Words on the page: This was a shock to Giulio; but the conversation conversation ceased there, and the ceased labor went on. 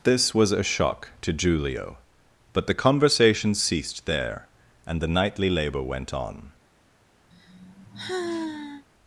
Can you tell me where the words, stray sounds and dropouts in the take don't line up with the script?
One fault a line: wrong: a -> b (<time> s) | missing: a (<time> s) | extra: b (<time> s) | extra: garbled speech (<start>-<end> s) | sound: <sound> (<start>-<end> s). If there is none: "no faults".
missing: conversation (3.5 s)
wrong: ceased -> nightly (5.1 s)
sound: sigh (7.3-8.9 s)